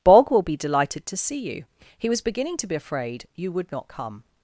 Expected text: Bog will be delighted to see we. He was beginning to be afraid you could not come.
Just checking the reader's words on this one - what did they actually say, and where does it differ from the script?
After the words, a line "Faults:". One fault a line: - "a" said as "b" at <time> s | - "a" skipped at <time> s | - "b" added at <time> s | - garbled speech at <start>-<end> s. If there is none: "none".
Bog will be delighted to see you. He was beginning to be afraid you would not come.
Faults:
- "we" said as "you" at 1.4 s
- "could" said as "would" at 3.5 s